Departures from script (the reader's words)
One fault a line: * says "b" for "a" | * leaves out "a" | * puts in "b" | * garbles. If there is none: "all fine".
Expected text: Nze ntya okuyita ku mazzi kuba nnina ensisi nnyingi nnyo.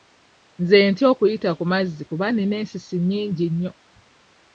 all fine